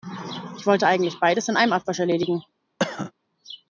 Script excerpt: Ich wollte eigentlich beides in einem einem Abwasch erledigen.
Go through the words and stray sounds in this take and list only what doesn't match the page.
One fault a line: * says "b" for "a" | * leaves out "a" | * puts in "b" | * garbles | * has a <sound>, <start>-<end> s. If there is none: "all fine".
* leaves out "einem"
* has a cough, 2.8-3.1 s